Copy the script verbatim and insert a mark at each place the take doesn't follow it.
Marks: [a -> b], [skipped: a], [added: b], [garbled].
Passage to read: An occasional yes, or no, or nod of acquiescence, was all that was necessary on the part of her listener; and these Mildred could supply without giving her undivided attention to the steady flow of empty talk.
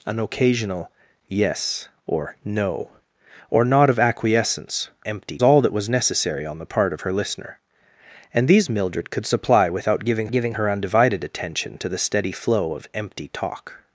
An occasional yes, or no, or nod of acquiescence, [was -> empty] all that was necessary on the part of her listener; and these Mildred could supply without giving [added: giving] her undivided attention to the steady flow of empty talk.